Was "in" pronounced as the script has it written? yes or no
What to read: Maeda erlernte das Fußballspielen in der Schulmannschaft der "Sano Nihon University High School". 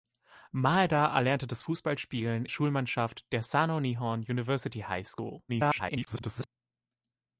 no